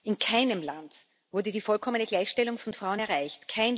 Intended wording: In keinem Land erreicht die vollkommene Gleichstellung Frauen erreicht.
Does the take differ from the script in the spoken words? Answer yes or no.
yes